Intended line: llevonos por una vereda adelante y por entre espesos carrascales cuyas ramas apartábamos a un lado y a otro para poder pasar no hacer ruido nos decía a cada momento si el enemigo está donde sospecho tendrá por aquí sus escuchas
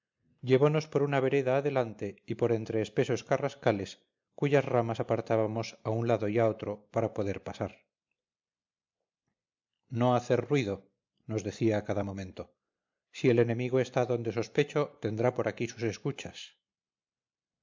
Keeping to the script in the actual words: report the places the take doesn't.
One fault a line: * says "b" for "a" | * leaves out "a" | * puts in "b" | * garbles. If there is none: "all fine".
all fine